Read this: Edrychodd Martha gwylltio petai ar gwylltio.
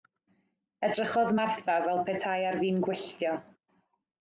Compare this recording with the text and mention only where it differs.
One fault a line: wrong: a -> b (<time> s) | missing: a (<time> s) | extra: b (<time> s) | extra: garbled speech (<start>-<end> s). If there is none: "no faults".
wrong: gwylltio -> fel (1.9 s)
extra: fin (2.6 s)